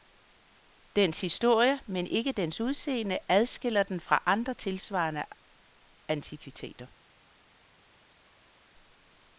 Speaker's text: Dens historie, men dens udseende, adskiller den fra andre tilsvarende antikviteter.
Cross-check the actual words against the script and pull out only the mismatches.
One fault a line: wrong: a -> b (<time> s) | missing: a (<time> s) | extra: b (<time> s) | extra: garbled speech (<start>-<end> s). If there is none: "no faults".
extra: ikke (2.1 s)